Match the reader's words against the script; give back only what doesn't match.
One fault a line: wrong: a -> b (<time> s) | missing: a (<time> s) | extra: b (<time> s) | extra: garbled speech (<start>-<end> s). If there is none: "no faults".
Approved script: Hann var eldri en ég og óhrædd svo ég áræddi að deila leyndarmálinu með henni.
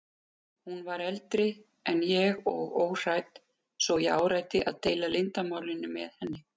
wrong: Hann -> Hún (0.7 s)